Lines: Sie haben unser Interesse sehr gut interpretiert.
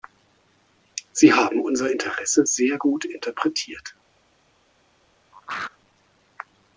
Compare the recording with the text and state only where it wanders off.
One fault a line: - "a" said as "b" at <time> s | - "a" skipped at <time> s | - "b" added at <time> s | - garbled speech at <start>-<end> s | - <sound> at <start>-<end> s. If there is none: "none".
- throat clearing at 5.3-5.8 s